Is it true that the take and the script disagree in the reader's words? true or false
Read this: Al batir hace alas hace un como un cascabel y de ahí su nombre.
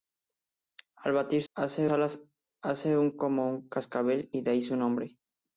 false